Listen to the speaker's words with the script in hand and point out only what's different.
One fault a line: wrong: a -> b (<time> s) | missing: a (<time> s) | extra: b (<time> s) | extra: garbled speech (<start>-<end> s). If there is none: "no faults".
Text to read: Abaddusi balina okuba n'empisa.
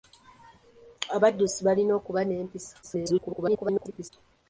extra: garbled speech (2.8-4.1 s)